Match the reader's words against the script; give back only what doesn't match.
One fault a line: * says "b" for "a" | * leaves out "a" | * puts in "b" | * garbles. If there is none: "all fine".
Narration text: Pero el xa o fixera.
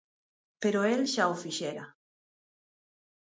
all fine